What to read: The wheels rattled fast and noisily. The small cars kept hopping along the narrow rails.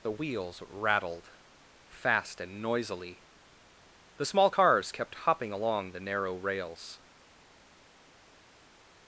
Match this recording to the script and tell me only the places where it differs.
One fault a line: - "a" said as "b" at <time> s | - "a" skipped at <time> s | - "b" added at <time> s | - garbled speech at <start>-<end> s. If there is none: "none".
none